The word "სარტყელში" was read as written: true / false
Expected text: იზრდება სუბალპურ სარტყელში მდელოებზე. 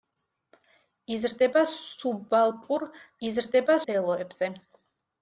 false